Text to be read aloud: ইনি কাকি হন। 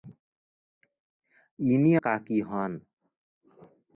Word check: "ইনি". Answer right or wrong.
right